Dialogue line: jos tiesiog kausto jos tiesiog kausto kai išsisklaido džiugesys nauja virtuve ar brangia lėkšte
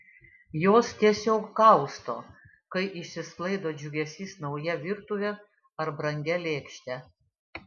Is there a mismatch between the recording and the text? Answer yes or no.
yes